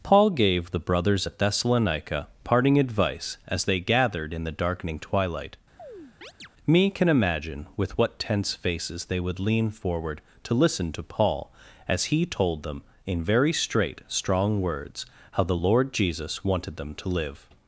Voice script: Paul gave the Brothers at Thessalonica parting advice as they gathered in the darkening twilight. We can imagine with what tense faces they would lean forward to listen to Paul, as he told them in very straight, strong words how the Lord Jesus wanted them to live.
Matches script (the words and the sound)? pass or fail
fail